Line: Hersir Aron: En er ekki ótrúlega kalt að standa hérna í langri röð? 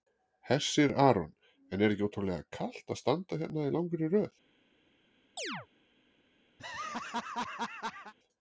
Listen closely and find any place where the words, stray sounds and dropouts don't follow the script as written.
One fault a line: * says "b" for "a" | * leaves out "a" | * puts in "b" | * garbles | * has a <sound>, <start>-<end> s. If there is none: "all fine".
* has a chirp, 5.4-5.7 s
* has a laugh, 6.6-8.1 s